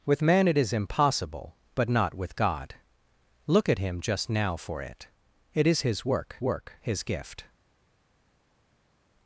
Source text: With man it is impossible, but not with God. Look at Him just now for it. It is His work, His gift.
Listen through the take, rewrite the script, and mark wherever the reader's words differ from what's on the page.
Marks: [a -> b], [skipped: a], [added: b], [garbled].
With man it is impossible, but not with God. Look at Him just now for it. It is His work, [added: work] His gift.